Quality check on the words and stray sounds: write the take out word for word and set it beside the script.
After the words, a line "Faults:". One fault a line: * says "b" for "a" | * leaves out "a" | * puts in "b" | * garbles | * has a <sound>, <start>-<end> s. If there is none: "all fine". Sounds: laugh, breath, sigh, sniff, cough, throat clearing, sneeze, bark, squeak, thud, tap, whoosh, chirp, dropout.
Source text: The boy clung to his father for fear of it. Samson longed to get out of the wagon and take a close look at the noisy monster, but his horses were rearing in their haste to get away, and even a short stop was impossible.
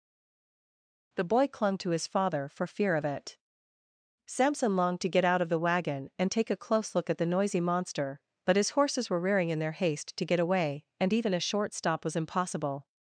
The boy clung to his father for fear of it. Samson longed to get out of the wagon and take a close look at the noisy monster, but his horses were rearing in their haste to get away, and even a short stop was impossible.
Faults:
all fine